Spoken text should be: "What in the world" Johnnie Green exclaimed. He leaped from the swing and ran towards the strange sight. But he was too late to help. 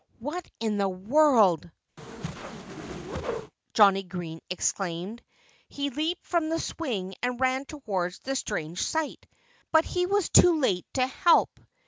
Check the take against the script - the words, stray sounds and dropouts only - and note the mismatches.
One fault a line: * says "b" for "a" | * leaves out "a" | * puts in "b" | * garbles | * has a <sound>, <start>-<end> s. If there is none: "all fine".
* has a whoosh, 2.0-3.5 s